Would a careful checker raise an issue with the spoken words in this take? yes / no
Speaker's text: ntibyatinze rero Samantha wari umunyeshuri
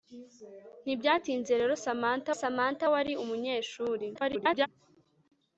yes